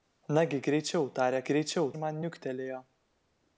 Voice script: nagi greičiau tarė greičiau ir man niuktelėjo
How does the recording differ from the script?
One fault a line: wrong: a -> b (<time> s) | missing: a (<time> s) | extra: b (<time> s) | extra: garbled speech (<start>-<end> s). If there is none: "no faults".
no faults